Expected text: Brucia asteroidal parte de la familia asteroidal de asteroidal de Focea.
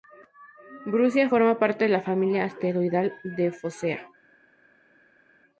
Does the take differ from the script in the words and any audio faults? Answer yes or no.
yes